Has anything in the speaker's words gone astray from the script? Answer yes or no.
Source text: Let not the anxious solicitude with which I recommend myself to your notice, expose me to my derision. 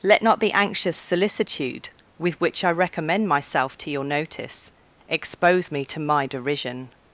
no